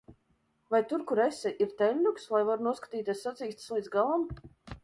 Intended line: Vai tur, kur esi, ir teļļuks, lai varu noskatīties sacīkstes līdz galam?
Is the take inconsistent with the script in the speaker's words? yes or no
no